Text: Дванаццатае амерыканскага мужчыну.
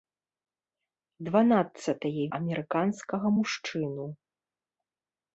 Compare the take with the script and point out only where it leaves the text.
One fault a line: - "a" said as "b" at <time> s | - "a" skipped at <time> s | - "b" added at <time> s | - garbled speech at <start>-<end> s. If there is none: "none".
none